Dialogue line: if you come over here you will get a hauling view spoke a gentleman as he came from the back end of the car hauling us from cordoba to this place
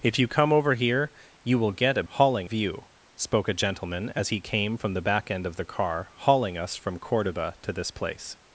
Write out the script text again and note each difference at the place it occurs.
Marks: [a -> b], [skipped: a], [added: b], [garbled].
if you come over here you will get a hauling view spoke a gentleman as he came from the back end of the car hauling us from cordoba to this place